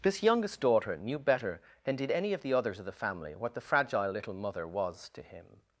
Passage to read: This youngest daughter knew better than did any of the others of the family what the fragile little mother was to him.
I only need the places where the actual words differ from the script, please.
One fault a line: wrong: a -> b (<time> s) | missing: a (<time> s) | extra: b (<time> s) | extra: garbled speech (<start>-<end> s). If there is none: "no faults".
no faults